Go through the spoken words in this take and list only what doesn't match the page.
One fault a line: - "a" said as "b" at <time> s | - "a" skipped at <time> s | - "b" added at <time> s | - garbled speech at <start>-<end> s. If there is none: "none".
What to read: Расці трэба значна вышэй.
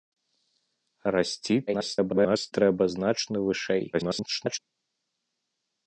- garbled speech at 1.7-2.5 s
- garbled speech at 3.9-4.6 s